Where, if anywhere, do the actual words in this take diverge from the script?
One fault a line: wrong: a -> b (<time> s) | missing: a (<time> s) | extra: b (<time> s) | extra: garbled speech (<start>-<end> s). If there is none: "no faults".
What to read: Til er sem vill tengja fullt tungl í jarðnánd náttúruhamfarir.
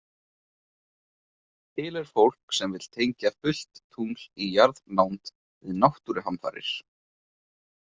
extra: fólk (2.1 s)
extra: við (5.3 s)